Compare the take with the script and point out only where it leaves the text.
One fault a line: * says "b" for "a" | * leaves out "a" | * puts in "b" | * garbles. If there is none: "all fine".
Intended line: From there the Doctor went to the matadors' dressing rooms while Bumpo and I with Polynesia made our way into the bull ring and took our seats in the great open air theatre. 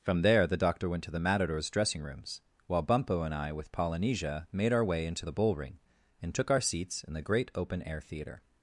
all fine